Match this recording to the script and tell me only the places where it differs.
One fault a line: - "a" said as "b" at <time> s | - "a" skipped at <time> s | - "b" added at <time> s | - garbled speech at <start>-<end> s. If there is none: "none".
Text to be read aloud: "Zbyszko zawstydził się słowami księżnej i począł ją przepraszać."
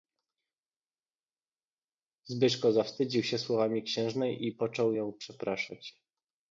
none